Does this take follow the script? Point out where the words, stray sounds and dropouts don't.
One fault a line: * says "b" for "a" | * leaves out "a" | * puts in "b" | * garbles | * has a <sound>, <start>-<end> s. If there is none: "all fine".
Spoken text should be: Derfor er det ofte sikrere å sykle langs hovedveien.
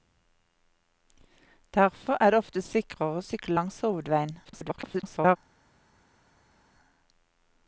* garbles